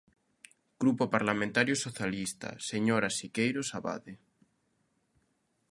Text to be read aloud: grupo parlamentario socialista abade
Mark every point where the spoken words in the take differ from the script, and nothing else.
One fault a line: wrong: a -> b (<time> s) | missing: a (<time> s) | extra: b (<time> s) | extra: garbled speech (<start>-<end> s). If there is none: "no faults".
extra: señora siqueiros (2.7 s)